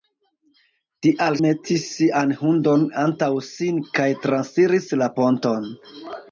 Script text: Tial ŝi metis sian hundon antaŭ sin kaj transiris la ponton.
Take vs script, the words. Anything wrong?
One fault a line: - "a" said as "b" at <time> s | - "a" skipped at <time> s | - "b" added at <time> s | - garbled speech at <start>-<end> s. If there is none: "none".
- "ŝi" skipped at 1.4 s